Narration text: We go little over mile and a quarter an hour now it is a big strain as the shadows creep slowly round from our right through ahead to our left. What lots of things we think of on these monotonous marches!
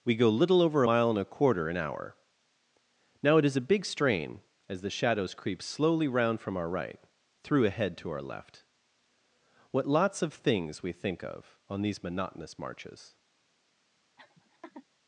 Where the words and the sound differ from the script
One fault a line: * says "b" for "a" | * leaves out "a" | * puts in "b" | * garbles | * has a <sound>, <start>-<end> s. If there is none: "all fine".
* has a laugh, 14.2-14.9 s